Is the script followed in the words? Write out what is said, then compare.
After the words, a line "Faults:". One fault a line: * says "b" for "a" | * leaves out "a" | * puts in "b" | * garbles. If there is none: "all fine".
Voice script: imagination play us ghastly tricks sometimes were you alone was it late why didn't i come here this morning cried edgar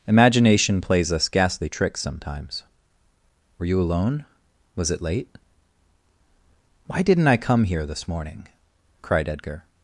imagination plays us ghastly tricks sometimes were you alone was it late why didn't i come here this morning cried edgar
Faults:
* says "plays" for "play"